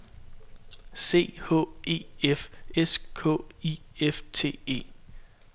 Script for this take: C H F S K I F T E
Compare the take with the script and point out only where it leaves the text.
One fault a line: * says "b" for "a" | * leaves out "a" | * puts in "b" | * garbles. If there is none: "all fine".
* puts in "E"